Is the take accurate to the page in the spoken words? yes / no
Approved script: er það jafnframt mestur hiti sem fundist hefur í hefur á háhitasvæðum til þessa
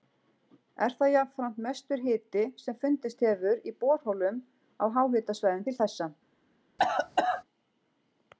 no